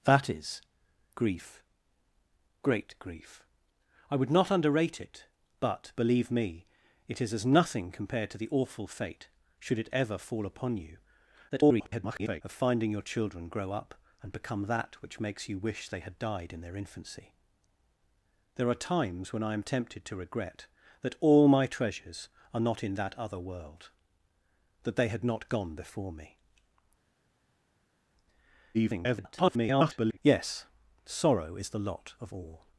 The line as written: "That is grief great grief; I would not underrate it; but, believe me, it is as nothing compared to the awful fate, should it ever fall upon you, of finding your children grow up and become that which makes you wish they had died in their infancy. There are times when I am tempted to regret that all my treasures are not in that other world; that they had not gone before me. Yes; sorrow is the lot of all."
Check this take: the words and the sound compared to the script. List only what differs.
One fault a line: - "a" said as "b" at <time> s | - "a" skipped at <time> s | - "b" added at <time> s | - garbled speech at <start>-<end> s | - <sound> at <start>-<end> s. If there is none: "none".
- garbled speech at 11.5-12.4 s
- garbled speech at 28.7-30.2 s